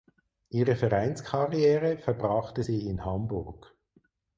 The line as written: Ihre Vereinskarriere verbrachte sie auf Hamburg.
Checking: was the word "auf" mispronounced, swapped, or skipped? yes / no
yes